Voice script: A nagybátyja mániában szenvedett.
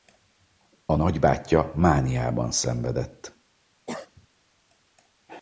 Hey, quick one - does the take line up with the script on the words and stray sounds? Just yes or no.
no